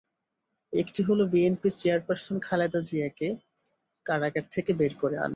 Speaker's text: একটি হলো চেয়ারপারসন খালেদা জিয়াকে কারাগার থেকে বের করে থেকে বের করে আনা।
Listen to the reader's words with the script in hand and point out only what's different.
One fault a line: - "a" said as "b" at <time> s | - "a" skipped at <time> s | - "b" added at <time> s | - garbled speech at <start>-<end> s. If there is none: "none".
- "বিএনপির" added at 1.3 s
- "থেকে বের করে" skipped at 5.2 s